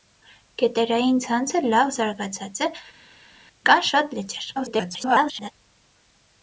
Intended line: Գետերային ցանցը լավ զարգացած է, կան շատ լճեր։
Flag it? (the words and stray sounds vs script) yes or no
yes